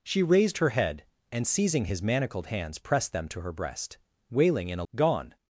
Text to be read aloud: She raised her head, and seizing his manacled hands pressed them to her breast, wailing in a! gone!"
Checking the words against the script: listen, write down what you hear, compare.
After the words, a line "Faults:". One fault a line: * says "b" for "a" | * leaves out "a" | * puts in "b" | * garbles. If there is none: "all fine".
She raised her head, and seizing his manacled hands pressed them to her breast, wailing in a! gone!"
Faults:
all fine